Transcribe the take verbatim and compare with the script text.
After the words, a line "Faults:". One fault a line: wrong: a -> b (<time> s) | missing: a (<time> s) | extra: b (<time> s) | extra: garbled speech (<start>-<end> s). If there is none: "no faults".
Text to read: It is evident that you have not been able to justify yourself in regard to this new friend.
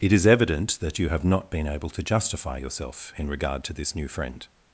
It is evident that you have not been able to justify yourself in regard to this new friend.
Faults:
no faults